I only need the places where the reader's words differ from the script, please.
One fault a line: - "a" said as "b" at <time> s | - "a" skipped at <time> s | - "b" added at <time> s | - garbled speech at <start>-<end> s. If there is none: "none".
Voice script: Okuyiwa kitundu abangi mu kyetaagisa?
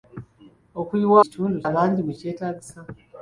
none